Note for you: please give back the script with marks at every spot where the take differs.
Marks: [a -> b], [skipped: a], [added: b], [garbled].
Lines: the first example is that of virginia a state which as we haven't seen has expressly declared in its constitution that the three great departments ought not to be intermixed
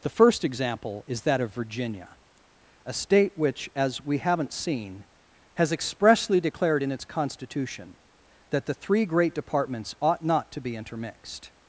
the first example is that of virginia a state which as we haven't seen has expressly declared in its constitution that the three great departments ought not to be intermixed